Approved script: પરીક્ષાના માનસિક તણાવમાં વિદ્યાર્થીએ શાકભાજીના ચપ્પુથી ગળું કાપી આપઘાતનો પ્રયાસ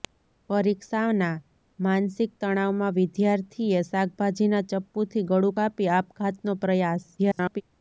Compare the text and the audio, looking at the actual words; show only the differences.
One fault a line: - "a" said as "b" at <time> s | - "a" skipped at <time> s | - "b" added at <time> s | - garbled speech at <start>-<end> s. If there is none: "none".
- garbled speech at 7.2-7.6 s